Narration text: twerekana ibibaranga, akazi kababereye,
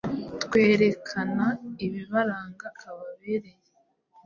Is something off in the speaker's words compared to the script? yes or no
yes